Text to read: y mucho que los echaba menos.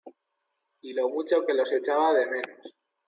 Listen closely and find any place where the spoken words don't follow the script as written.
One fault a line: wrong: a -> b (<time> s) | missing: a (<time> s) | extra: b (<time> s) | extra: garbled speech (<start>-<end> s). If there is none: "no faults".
extra: lo (0.9 s)
extra: de (2.1 s)